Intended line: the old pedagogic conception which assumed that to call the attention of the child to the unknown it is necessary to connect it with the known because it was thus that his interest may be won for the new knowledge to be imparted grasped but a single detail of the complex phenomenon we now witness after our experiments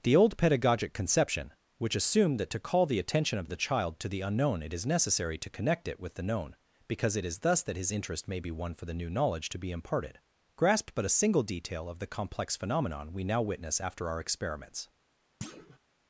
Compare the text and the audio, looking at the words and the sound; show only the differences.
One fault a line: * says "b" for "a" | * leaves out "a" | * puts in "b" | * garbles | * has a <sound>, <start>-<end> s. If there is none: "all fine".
* says "is" for "was"
* has a thud, 15.4-15.8 s